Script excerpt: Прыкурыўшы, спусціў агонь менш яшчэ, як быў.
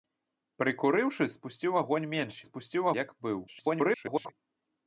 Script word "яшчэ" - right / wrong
wrong